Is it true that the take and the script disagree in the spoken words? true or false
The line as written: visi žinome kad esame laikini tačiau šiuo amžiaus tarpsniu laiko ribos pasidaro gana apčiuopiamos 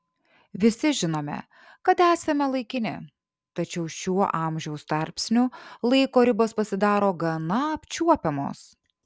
false